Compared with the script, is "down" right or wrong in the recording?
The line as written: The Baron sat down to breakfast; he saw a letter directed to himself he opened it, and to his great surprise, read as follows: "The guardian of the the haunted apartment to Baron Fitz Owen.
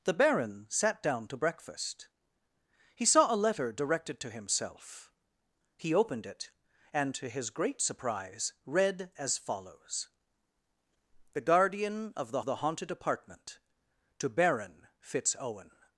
right